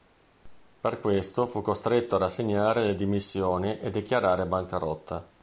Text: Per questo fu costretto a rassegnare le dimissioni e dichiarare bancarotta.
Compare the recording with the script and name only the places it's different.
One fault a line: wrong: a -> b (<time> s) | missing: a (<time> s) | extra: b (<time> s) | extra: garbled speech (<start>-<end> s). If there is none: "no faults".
no faults